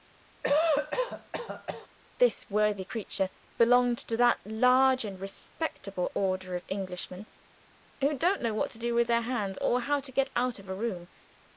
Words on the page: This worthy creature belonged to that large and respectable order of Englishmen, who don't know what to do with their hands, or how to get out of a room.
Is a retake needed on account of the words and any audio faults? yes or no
yes